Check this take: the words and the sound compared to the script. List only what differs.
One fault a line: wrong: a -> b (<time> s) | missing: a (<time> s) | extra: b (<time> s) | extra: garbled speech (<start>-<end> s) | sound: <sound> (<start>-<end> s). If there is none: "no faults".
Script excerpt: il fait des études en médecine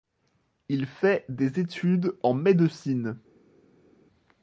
no faults